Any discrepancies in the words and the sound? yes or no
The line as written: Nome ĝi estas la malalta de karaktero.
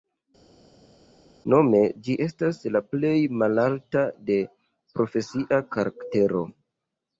yes